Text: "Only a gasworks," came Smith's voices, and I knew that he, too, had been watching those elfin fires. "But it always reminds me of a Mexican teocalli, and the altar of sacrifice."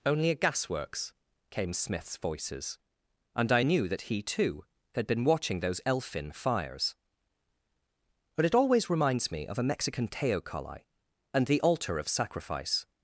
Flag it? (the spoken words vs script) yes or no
no